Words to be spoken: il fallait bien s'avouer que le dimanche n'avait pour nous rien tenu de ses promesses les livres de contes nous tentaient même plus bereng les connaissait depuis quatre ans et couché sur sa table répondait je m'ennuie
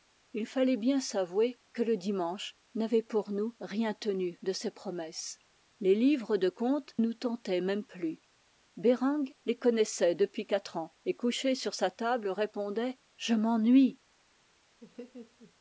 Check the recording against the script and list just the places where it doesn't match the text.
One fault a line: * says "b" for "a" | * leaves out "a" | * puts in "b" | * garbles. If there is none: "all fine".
all fine